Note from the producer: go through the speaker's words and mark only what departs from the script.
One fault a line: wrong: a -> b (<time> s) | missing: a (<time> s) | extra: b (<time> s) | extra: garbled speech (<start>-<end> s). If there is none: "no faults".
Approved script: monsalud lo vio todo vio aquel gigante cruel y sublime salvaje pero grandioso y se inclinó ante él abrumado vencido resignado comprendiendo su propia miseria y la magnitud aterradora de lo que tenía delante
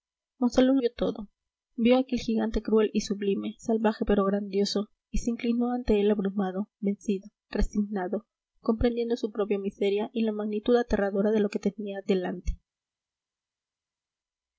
missing: lo (0.8 s)